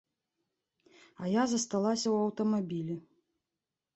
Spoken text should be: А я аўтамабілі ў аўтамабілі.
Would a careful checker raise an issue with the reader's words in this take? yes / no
yes